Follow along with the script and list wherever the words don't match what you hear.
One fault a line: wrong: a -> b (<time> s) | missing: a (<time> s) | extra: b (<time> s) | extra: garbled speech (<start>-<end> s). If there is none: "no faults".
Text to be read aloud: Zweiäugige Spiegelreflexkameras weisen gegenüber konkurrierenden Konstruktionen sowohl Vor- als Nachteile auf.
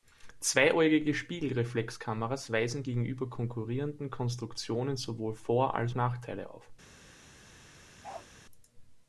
no faults